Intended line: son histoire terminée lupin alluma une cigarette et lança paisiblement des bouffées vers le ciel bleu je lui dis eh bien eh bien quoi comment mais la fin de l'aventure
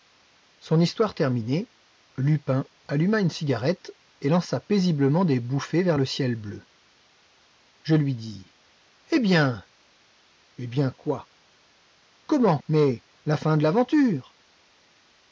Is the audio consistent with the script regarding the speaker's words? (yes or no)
yes